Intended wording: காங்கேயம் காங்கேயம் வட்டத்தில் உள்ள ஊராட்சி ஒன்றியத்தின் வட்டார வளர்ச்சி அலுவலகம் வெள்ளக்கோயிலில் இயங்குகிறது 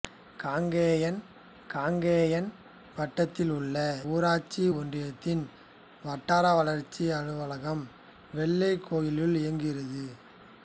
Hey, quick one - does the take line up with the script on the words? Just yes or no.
yes